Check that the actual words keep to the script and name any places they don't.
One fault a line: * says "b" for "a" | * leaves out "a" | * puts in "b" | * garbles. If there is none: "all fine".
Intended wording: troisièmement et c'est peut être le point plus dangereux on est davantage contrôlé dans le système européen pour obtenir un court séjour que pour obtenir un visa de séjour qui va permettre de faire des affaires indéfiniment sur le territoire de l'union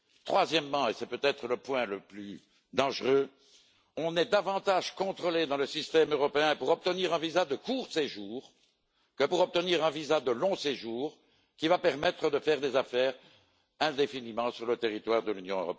* puts in "le"
* puts in "visa de"
* puts in "long"